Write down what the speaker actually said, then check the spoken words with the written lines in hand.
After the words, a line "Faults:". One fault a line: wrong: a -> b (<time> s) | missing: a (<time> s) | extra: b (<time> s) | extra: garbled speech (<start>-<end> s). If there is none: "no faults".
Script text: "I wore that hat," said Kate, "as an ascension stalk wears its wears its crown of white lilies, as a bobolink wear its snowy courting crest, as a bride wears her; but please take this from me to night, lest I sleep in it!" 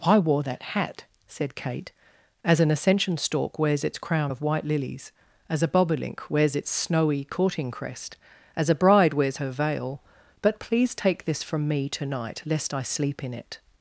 "I wore that hat," said Kate, "as an ascension stalk wears its crown of white lilies, as a bobolink wears its snowy courting crest, as a bride wears her veil; but please take this from me to night, lest I sleep in it!"
Faults:
missing: wears its (4.0 s)
wrong: wear -> wears (6.3 s)
extra: veil (9.5 s)